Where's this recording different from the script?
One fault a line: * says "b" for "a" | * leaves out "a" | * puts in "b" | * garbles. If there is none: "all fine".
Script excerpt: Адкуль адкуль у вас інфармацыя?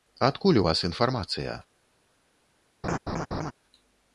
* leaves out "адкуль"